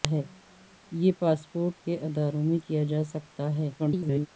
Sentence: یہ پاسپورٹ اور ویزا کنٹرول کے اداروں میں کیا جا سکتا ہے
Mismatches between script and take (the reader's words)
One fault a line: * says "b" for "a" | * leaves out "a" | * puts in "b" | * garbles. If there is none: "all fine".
* leaves out "اور ویزا کنٹرول"
* garbles